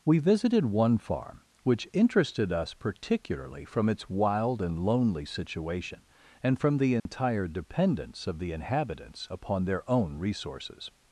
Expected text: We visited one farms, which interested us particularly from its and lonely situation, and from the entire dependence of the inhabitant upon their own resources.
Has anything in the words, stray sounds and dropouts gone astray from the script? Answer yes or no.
yes